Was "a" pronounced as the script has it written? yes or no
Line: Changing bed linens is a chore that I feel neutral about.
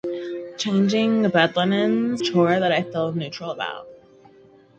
no